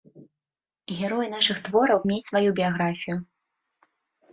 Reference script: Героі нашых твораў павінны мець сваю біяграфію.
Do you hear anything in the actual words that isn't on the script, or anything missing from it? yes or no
yes